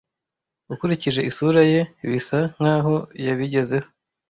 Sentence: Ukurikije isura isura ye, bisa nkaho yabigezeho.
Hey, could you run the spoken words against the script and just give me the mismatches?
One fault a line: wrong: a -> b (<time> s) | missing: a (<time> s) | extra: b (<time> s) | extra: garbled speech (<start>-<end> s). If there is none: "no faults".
missing: isura (1.6 s)